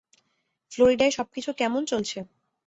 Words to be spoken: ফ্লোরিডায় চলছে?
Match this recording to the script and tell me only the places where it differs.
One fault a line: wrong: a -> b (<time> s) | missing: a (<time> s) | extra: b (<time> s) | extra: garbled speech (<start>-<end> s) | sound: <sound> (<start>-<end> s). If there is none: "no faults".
extra: সবকিছু কেমন (1.1 s)